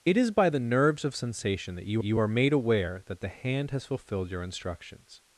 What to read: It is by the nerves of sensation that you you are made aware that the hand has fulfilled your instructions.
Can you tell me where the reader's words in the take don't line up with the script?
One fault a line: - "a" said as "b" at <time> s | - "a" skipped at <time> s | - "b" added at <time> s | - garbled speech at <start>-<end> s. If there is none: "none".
none